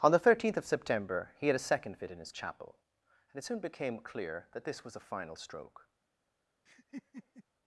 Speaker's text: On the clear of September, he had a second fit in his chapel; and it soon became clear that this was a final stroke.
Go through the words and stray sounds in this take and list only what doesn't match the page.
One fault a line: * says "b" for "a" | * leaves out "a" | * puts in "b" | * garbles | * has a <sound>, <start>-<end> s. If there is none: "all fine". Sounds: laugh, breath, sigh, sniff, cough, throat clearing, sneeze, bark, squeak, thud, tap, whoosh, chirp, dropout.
* says "thirteenth" for "clear"
* has a laugh, 6.7-7.4 s